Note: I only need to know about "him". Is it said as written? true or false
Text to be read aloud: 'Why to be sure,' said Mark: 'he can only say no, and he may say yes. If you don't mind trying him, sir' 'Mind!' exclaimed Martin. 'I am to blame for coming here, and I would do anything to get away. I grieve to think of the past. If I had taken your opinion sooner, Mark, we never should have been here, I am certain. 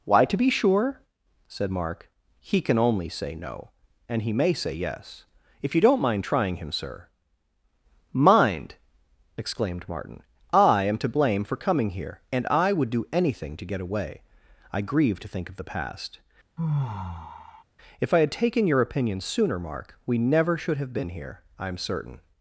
true